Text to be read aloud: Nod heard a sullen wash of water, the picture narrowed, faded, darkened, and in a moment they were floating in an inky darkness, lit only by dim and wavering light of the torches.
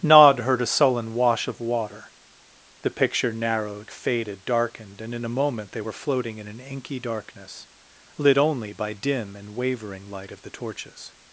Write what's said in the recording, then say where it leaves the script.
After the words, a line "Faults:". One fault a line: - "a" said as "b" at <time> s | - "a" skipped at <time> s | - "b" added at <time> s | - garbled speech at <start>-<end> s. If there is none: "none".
Nod heard a sullen wash of water, the picture narrowed, faded, darkened, and in a moment they were floating in an inky darkness, lit only by dim and wavering light of the torches.
Faults:
none